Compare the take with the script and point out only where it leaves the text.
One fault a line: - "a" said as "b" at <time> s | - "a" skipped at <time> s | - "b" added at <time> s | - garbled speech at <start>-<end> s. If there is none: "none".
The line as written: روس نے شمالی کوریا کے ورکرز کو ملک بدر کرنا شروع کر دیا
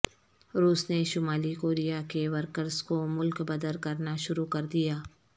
none